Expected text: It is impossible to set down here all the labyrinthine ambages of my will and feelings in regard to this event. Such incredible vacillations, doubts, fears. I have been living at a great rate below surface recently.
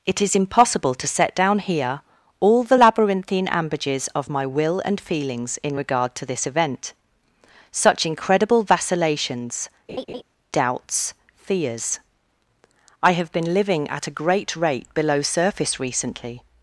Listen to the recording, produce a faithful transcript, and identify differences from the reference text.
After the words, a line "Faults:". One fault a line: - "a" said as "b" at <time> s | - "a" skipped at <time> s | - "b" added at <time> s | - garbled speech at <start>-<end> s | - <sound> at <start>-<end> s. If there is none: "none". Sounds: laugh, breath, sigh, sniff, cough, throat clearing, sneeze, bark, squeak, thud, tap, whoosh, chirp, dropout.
It is impossible to set down here all the labyrinthine ambages of my will and feelings in regard to this event. Such incredible vacillations, doubts, fears. I have been living at a great rate below surface recently.
Faults:
- laugh at 9.9-10.2 s